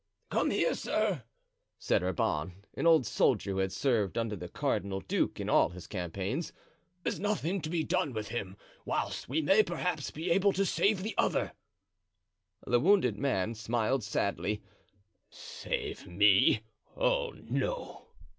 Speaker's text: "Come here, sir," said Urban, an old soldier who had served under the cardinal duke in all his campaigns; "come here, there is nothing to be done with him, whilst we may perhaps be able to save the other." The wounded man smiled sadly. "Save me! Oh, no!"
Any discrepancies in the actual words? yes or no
yes